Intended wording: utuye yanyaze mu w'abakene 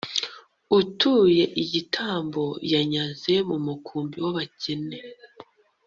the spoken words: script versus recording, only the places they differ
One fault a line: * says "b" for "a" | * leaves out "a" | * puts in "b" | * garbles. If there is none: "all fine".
* puts in "igitambo"
* puts in "mukumbi"